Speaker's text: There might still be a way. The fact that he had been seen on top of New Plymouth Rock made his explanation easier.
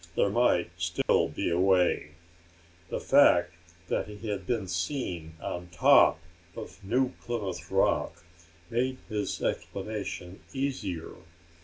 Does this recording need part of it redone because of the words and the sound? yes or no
yes